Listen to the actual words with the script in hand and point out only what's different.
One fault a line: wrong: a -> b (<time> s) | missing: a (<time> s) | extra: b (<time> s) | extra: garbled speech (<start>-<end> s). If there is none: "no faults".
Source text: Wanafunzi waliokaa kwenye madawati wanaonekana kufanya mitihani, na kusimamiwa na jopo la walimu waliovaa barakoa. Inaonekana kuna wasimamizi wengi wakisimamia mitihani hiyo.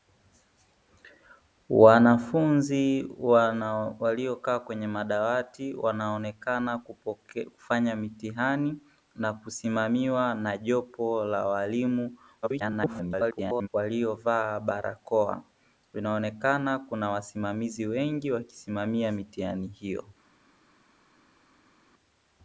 extra: garbled speech (12.4-13.7 s)